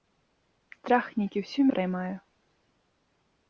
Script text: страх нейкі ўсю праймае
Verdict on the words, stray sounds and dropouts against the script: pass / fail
pass